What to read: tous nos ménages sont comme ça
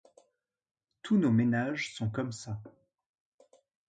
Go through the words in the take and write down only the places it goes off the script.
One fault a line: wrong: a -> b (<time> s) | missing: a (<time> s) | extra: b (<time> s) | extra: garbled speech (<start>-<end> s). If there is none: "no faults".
no faults